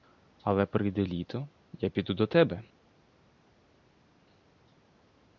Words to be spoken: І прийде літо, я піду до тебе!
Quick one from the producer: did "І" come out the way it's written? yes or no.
no